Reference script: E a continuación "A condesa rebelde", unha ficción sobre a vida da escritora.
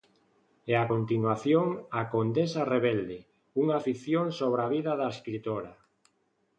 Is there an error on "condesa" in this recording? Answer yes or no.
no